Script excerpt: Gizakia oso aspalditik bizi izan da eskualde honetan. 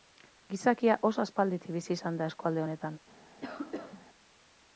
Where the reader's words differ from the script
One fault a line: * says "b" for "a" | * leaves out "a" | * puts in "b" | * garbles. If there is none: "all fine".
all fine